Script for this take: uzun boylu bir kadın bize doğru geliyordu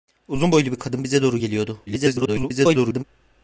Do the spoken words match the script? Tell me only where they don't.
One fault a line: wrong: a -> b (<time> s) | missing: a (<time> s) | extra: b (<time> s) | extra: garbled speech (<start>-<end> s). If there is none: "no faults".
extra: garbled speech (1.9-3.0 s)